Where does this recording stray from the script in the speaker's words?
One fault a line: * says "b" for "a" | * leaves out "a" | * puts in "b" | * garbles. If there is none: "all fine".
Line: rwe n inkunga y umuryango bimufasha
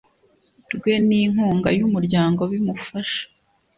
all fine